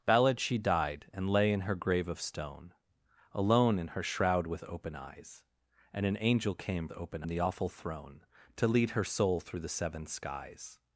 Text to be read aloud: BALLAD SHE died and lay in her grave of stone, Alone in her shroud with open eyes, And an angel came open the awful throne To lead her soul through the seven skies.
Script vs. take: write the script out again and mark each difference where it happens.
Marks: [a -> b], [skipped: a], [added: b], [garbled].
BALLAD SHE died and lay in her grave of stone, Alone in her shroud with open eyes, And an angel came open the awful throne To lead her soul through the seven skies.